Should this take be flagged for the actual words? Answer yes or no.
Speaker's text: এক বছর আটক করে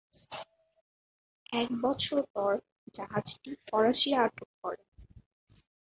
yes